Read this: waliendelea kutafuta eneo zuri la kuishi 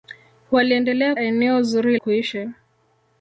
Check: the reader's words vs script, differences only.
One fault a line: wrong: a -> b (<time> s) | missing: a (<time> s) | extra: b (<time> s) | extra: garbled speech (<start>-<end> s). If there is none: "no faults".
missing: kutafuta (1.1 s)
missing: la (2.0 s)